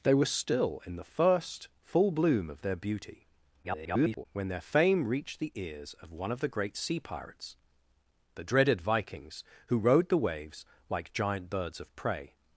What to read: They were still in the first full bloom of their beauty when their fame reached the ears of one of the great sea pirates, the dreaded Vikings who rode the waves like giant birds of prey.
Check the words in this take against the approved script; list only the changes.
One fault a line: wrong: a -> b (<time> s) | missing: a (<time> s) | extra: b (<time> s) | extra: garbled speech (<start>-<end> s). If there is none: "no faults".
extra: garbled speech (3.6-4.3 s)